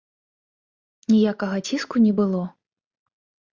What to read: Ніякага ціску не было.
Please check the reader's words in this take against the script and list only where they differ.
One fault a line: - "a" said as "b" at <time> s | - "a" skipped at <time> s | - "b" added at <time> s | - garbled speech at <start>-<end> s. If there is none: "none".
none